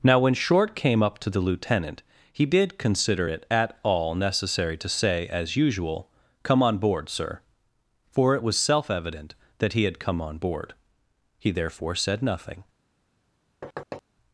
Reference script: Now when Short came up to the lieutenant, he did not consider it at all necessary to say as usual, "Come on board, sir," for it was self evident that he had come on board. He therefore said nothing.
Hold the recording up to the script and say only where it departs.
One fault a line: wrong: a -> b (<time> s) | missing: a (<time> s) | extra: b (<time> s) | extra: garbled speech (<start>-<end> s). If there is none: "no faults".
missing: not (2.8 s)